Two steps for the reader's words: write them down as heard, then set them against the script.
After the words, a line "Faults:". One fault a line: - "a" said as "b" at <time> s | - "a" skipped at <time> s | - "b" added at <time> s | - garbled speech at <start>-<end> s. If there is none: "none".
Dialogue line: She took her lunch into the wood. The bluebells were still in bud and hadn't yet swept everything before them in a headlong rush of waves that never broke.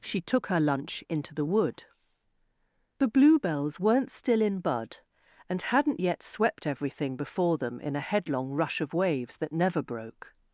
She took her lunch into the wood. The bluebells weren't still in bud and hadn't yet swept everything before them in a headlong rush of waves that never broke.
Faults:
- "were" said as "weren't" at 3.8 s